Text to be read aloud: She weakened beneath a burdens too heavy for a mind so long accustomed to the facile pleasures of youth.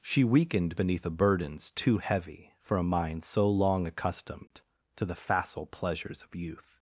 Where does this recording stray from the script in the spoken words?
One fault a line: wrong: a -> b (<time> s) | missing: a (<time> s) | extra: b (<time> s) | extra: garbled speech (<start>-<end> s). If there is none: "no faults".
no faults